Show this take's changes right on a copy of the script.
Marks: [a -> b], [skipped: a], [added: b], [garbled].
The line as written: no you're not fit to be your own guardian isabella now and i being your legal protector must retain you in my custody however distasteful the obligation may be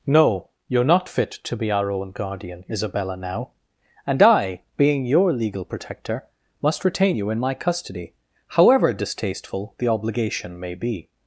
no you're not fit to be [your -> our] own guardian isabella now and i being your legal protector must retain you in my custody however distasteful the obligation may be